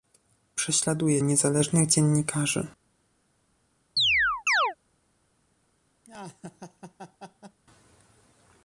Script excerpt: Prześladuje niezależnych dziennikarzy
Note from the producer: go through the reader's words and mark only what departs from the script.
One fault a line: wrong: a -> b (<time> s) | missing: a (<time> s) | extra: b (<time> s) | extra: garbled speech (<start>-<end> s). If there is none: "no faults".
no faults